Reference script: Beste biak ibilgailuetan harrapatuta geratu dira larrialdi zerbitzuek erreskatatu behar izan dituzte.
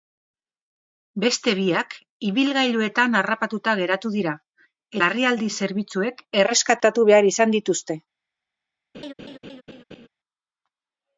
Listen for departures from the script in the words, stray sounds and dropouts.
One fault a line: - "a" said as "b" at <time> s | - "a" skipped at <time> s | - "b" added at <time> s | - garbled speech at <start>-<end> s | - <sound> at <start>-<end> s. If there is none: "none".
- laugh at 8.9-10.1 s